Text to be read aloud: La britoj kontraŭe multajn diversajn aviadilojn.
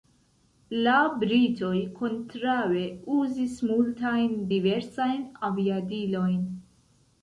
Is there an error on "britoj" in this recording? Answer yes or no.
no